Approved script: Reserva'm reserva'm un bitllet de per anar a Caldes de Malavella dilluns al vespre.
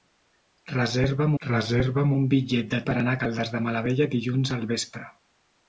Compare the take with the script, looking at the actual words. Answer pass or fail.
pass